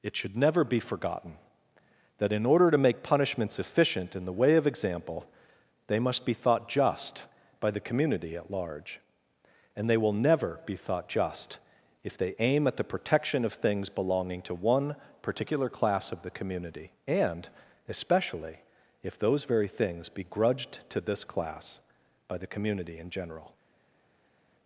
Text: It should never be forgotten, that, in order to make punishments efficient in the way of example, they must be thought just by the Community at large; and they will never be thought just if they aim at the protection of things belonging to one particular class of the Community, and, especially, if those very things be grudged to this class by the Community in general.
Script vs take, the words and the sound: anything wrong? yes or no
no